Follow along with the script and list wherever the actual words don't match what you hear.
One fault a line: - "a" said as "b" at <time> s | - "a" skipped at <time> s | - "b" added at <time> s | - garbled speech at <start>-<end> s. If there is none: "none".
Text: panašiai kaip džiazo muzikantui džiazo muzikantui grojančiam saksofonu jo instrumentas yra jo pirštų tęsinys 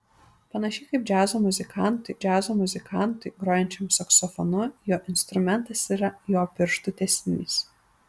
none